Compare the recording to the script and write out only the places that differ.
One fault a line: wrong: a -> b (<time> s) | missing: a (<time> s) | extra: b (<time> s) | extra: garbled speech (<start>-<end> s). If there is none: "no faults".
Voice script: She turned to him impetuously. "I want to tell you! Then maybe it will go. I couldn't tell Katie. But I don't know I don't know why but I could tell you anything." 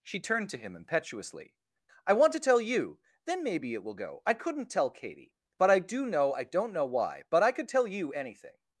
wrong: don't -> do (5.8 s)